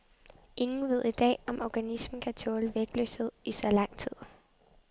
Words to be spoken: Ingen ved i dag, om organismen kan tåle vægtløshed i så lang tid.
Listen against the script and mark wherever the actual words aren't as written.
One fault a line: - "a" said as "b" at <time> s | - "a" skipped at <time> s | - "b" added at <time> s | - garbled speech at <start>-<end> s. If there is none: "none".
none